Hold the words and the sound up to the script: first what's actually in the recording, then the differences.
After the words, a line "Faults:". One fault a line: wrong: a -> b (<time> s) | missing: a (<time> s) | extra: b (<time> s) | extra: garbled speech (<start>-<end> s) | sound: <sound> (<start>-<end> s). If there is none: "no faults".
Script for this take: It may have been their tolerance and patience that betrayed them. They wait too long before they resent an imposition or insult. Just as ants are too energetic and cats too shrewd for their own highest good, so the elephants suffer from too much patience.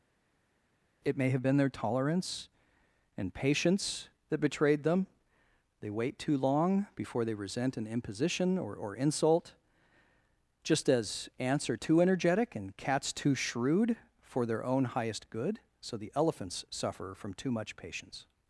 It may have been their tolerance and patience that betrayed them. They wait too long before they resent an imposition or or insult. Just as ants are too energetic and cats too shrewd for their own highest good, so the elephants suffer from too much patience.
Faults:
extra: or (8.7 s)